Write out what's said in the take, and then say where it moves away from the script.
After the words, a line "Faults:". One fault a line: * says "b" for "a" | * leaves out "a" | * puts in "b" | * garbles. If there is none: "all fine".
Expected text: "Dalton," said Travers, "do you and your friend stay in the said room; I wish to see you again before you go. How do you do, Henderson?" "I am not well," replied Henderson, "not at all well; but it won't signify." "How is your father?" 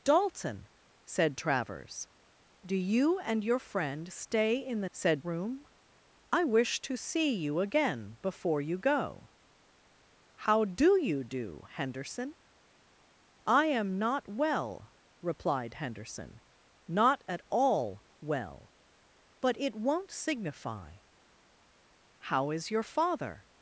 "Dalton," said Travers, "do you and your friend stay in the said room; I wish to see you again before you go. How do you do, Henderson?" "I am not well," replied Henderson, "not at all well; but it won't signify." "How is your father?"
Faults:
all fine